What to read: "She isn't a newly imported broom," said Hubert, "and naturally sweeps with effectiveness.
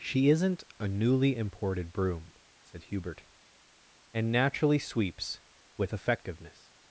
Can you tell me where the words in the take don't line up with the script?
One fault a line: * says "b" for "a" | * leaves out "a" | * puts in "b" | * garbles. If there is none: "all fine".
all fine